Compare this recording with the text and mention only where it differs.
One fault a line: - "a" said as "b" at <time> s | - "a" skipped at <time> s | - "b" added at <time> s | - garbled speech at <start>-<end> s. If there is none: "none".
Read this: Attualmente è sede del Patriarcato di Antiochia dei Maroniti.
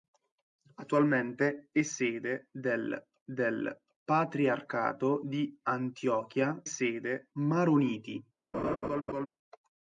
- "del" added at 3.2 s
- "dei" said as "sede" at 6.6 s